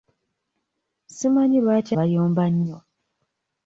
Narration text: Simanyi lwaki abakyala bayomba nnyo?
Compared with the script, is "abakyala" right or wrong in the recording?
wrong